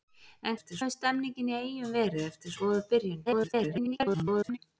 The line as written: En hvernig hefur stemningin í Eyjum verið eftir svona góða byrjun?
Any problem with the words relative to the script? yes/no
yes